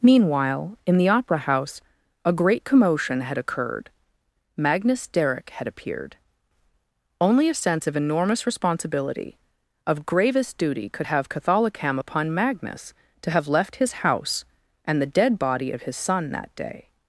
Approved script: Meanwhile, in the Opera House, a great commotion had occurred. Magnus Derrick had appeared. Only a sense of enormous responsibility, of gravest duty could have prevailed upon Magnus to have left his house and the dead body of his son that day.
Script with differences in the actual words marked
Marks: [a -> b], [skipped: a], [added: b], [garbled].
Meanwhile, in the Opera House, a great commotion had occurred. Magnus Derrick had appeared. Only a sense of enormous responsibility, of gravest duty could have [prevailed -> catholicam] upon Magnus to have left his house and the dead body of his son that day.